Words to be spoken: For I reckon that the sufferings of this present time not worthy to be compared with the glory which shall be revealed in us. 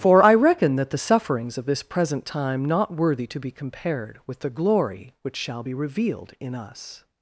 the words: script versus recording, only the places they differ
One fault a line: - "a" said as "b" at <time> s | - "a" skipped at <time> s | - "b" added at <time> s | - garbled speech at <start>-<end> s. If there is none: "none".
none